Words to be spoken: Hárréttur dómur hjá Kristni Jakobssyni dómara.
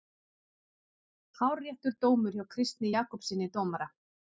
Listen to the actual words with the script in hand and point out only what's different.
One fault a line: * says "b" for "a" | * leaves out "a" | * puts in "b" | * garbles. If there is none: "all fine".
all fine